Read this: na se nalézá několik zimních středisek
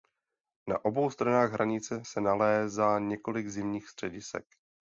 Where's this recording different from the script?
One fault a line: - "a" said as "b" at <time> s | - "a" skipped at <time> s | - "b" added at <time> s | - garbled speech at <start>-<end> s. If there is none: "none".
- "obou stranách hranice" added at 0.8 s